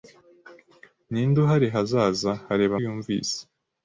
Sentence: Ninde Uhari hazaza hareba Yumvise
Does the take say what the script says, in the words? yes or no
yes